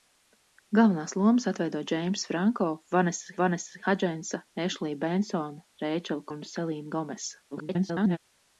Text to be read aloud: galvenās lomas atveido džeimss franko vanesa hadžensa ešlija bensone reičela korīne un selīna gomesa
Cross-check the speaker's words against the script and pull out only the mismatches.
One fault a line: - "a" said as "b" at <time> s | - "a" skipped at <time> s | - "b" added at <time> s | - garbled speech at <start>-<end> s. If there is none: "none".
- "vanesa" added at 3.4 s
- "korīne" skipped at 6.3 s
- garbled speech at 7.5-8.2 s